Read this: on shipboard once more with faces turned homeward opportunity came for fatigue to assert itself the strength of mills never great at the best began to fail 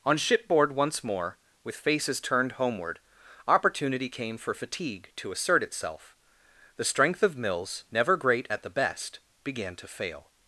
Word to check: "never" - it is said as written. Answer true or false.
true